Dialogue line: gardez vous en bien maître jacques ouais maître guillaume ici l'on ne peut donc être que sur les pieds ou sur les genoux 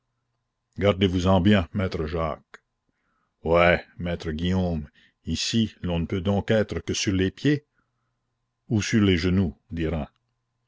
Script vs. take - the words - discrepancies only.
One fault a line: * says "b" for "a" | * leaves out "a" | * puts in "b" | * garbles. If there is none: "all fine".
all fine